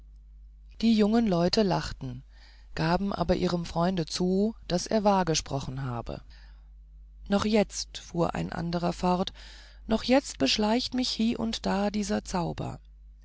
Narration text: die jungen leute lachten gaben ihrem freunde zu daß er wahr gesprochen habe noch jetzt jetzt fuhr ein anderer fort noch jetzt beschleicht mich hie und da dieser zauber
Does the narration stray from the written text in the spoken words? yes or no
yes